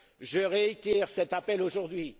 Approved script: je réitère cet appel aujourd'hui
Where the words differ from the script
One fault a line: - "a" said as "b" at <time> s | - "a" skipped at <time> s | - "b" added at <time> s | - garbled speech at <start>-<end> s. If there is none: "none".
none